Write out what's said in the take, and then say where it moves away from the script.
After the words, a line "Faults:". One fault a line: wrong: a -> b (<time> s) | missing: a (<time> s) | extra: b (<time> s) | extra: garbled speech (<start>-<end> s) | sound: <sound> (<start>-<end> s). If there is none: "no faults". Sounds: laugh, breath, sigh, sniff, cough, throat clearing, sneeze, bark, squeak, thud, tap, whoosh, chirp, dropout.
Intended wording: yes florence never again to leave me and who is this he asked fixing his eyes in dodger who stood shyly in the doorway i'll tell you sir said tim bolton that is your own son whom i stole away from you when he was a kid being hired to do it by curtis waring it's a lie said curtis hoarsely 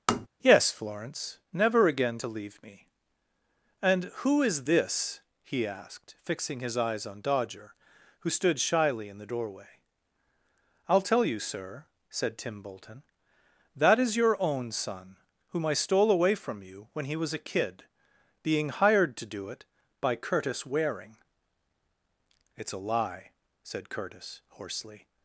yes florence never again to leave me and who is this he asked fixing his eyes on dodger who stood shyly in the doorway i'll tell you sir said tim bolton that is your own son whom i stole away from you when he was a kid being hired to do it by curtis waring it's a lie said curtis hoarsely
Faults:
sound: tap (0.1-0.3 s)
wrong: in -> on (7.1 s)